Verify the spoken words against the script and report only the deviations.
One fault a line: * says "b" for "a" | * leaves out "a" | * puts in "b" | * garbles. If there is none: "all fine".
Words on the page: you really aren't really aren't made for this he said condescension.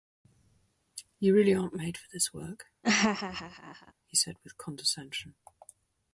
* leaves out "really aren't"
* puts in "work"
* puts in "with"